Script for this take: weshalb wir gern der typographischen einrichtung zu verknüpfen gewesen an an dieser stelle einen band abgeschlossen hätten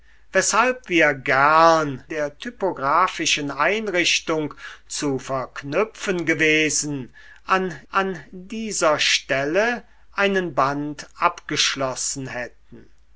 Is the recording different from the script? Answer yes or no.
no